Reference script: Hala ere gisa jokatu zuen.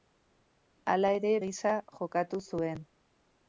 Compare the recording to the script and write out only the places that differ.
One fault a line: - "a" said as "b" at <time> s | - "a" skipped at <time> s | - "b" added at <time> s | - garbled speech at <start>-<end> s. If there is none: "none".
none